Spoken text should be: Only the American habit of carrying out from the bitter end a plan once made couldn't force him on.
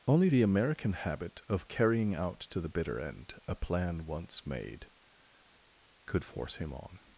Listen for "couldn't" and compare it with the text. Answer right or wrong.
wrong